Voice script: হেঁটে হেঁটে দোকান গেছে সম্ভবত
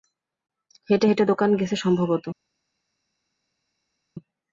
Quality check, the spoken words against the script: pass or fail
pass